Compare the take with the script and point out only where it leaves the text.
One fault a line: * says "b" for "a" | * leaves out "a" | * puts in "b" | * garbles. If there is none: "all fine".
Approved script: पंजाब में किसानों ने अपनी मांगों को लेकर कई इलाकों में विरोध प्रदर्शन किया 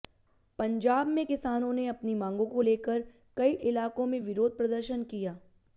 all fine